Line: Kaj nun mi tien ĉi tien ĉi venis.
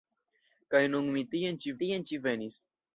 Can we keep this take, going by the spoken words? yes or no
yes